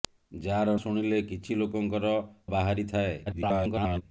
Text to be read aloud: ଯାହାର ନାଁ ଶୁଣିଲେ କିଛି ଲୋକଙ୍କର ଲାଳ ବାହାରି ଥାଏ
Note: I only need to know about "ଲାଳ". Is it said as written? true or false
false